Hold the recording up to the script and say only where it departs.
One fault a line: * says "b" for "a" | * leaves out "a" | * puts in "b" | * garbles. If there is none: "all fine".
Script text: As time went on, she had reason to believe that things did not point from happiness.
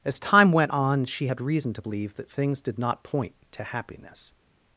* says "to" for "from"